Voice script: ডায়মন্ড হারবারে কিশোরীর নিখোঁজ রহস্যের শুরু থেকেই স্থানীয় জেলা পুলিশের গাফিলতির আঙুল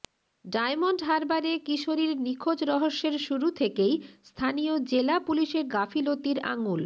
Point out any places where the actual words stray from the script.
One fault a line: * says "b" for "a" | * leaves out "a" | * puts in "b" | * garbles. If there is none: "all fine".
all fine